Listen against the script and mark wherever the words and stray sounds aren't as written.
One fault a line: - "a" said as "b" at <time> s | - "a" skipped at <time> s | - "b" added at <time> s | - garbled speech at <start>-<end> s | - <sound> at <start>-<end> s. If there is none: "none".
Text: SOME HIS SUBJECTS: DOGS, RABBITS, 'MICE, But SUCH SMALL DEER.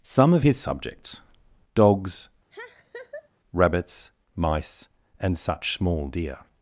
- "OF" added at 0.3 s
- laugh at 2.5-3.3 s
- "But" said as "AND" at 5.2 s